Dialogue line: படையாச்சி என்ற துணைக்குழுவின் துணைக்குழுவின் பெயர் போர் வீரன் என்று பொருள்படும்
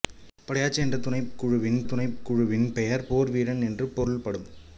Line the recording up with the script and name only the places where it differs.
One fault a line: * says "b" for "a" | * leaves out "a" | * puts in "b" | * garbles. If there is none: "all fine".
all fine